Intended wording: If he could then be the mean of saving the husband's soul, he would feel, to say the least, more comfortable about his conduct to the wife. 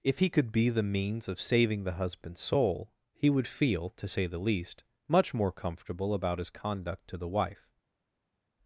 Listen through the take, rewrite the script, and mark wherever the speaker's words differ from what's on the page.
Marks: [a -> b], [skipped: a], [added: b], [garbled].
If he could [skipped: then] be the [mean -> means] of saving the husband's soul, he would feel, to say the least, [added: much] more comfortable about his conduct to the wife.